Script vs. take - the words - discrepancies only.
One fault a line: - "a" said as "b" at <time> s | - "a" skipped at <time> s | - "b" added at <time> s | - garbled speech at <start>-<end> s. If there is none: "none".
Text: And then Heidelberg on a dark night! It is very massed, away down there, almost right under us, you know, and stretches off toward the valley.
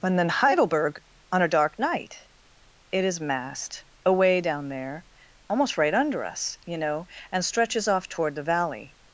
- "very" skipped at 3.2 s